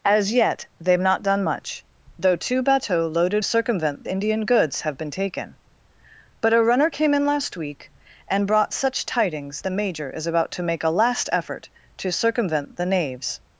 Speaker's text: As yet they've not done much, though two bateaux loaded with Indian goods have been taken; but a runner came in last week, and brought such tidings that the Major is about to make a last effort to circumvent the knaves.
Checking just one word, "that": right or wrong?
wrong